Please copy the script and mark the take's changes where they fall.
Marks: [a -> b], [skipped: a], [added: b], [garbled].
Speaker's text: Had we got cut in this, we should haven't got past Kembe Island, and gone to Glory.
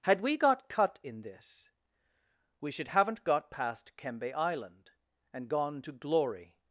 Had we got cut in this, we should haven't got past Kembe Island, and gone to Glory.